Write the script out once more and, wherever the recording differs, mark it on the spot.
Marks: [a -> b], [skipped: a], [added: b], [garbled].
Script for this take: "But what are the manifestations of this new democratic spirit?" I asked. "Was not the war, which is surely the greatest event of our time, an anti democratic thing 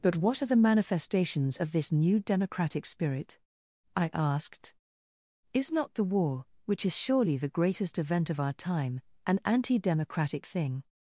"But what are the manifestations of this new democratic spirit?" I asked. ["Was -> Is] not the war, which is surely the greatest event of our time, an anti democratic thing